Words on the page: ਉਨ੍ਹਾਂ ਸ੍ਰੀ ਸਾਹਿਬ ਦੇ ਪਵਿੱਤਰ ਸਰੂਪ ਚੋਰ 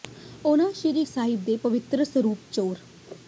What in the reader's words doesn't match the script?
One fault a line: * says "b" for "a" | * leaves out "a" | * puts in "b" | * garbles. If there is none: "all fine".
all fine